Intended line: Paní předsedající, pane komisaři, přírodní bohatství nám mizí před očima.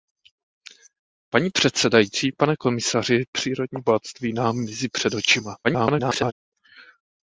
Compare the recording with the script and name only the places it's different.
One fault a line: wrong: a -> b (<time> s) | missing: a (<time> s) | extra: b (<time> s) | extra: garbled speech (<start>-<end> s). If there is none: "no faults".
extra: garbled speech (5.6-6.3 s)